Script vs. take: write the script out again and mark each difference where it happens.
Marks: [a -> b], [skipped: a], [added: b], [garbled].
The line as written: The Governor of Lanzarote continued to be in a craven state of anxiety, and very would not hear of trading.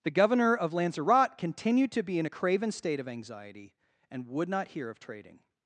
The Governor of Lanzarote continued to be in a craven state of anxiety, and [skipped: very] would not hear of trading.